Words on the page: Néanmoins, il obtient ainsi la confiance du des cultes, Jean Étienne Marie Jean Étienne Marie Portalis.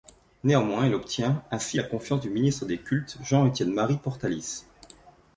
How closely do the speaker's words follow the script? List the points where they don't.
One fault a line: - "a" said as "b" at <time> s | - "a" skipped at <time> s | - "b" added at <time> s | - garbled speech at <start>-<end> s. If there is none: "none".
- "ministre" added at 2.3 s
- "Jean Étienne Marie" skipped at 4.0 s